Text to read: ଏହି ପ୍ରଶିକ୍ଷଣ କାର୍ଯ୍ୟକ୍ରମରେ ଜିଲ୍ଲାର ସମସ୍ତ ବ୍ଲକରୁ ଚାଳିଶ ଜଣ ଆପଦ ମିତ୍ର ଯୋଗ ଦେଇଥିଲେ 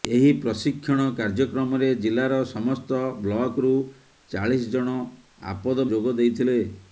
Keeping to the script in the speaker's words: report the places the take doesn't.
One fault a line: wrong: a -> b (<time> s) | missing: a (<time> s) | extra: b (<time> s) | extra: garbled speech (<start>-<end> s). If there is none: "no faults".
missing: ମିତ୍ର (5.9 s)